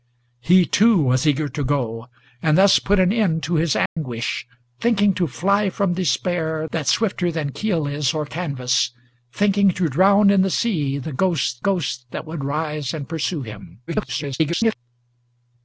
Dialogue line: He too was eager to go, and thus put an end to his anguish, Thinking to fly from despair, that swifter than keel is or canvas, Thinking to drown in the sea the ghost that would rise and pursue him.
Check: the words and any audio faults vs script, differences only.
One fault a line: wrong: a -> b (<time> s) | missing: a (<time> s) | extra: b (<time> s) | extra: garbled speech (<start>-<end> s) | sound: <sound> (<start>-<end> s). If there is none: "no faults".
sound: dropout (3.9-4.0 s)
extra: ghost (11.6 s)
extra: garbled speech (13.9-14.8 s)